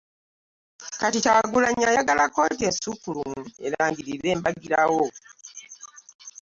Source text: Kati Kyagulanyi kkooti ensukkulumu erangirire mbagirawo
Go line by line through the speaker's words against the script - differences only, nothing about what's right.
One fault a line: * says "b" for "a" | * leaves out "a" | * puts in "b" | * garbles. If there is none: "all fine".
* puts in "ayagala"